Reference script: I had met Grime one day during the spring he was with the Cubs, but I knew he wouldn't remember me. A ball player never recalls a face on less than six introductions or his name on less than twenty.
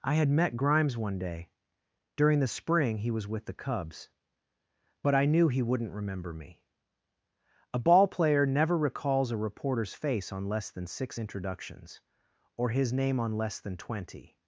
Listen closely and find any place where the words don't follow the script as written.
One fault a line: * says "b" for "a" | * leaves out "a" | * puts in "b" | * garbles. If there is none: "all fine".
* says "Grimes" for "Grime"
* puts in "reporter's"